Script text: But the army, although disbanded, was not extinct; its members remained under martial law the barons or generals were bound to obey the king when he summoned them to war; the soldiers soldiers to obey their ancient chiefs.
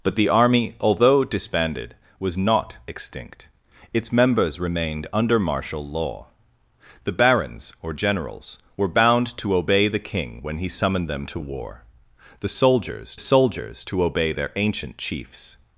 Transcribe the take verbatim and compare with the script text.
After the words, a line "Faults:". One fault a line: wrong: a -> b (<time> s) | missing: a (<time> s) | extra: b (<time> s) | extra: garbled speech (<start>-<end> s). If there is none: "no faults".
But the army, although disbanded, was not extinct; its members remained under martial law the barons or generals were bound to obey the king when he summoned them to war; the soldiers soldiers to obey their ancient chiefs.
Faults:
no faults